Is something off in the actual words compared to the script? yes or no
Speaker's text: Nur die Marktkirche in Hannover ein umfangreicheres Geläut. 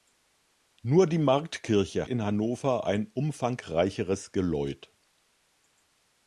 no